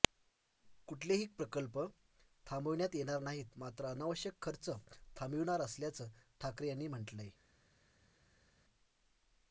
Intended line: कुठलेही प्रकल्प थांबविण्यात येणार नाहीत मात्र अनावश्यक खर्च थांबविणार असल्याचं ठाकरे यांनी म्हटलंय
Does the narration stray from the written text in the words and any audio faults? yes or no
no